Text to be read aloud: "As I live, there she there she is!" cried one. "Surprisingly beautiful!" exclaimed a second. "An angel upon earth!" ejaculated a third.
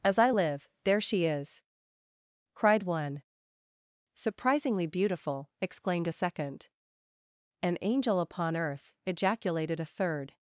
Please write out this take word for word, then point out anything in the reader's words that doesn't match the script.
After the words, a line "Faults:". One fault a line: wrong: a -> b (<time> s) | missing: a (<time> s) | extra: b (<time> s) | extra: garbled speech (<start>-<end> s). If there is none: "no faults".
"As I live, there she is!" cried one. "Surprisingly beautiful!" exclaimed a second. "An angel upon earth!" ejaculated a third.
Faults:
missing: there she (1.2 s)